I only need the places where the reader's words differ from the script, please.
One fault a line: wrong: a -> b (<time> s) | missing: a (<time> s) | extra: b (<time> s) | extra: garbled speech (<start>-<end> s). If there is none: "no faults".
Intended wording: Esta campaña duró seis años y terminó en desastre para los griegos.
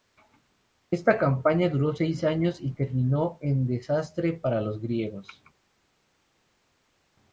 no faults